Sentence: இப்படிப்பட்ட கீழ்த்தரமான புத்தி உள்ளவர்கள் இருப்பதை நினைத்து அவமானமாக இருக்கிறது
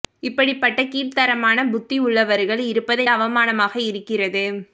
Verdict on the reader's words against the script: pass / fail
fail